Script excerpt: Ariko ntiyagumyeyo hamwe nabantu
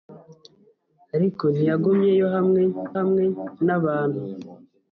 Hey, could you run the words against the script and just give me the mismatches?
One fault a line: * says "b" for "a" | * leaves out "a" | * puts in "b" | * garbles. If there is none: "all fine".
* puts in "hamwe"